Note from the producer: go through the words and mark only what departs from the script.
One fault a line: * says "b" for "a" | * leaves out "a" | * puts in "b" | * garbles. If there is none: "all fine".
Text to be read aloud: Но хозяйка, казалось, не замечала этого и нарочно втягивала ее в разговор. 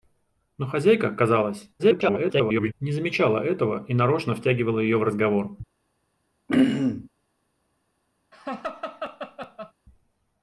* garbles